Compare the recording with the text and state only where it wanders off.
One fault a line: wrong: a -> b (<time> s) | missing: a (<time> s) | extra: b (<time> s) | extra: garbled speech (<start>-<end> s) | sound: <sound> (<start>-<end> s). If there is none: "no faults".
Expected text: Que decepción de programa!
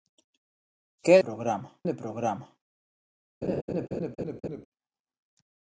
wrong: decepción -> programa (1.2 s)
sound: laugh (3.4-4.7 s)